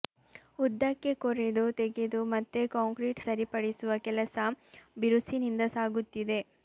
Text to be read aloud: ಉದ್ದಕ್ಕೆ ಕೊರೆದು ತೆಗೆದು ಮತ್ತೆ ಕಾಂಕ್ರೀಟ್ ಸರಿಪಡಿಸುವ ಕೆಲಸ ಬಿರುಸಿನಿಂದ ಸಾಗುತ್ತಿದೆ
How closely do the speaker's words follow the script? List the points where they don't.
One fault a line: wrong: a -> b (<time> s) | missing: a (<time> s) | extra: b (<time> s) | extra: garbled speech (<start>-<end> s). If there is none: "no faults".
no faults